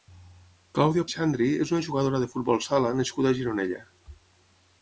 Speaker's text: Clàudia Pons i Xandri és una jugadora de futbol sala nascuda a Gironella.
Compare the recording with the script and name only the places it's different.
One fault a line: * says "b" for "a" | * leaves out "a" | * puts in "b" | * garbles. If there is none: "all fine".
* leaves out "Pons"